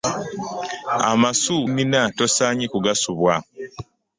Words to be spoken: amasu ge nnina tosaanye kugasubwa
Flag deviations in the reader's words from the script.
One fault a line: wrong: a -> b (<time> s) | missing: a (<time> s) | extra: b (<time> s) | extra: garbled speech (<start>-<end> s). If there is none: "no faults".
missing: ge (1.6 s)